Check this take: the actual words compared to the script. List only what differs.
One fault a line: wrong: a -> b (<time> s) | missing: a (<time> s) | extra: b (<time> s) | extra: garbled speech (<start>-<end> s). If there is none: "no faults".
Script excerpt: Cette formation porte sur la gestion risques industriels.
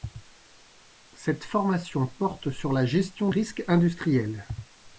no faults